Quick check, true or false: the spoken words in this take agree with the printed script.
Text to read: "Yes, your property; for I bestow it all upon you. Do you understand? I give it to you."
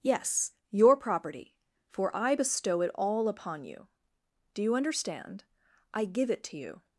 true